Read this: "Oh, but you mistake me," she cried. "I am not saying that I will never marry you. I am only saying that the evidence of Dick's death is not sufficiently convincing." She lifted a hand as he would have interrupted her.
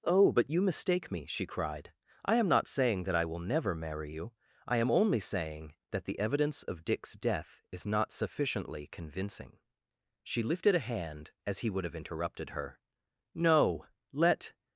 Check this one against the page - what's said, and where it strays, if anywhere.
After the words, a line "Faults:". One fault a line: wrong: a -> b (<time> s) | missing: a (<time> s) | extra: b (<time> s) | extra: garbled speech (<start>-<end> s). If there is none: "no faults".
"Oh, but you mistake me," she cried. "I am not saying that I will never marry you. I am only saying that the evidence of Dick's death is not sufficiently convincing." She lifted a hand as he would have interrupted her. "No! Let
Faults:
extra: No Let (13.3 s)